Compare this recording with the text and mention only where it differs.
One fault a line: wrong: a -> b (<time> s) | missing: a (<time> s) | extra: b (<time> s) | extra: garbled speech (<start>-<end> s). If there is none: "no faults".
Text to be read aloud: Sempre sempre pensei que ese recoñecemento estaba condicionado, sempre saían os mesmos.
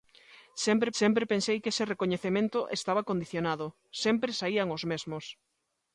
no faults